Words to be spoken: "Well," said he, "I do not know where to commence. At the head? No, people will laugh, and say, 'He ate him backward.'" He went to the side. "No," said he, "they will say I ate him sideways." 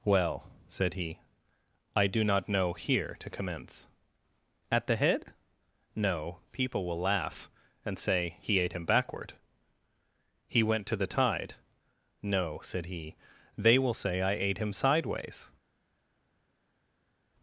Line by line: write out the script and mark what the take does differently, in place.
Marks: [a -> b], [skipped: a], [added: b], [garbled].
"Well," said he, "I do not know [where -> here] to commence. At the head? No, people will laugh, and say, 'He ate him backward.'" He went to the [side. -> tide] "No," said he, "they will say I ate him sideways."